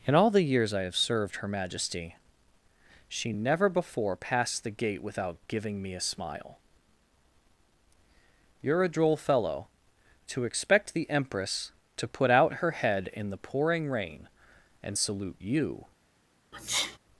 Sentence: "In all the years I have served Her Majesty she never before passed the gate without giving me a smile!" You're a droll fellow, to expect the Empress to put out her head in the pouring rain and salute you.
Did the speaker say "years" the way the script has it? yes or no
yes